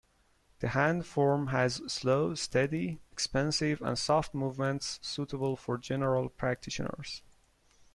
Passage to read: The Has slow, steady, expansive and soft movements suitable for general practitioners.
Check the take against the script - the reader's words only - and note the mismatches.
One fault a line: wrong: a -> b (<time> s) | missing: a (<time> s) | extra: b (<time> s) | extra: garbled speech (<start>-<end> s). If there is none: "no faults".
extra: Hand Form (0.7 s)